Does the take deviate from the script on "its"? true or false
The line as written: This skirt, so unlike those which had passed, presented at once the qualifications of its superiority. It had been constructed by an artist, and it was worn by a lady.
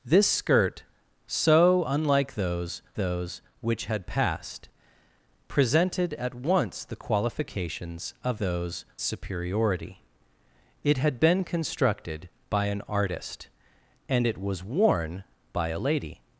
true